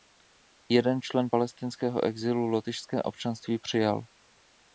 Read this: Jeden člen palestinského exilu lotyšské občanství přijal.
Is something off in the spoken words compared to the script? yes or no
no